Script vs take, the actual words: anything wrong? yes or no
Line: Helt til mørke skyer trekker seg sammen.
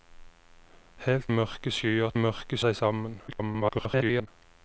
yes